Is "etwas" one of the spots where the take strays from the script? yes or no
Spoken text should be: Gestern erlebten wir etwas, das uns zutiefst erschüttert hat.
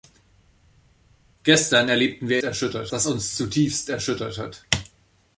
yes